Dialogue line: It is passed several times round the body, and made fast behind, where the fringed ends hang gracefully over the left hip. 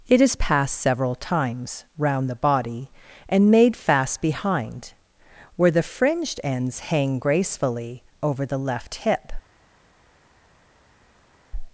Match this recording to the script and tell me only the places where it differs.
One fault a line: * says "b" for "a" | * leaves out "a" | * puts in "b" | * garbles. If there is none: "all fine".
all fine